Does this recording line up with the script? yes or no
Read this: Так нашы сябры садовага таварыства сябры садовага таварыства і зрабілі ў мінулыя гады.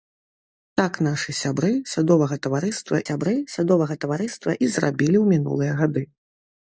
yes